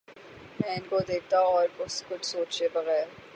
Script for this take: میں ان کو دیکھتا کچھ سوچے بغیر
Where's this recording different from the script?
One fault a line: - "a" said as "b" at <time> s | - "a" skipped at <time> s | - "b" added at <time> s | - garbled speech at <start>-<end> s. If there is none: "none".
- "اور" added at 1.5 s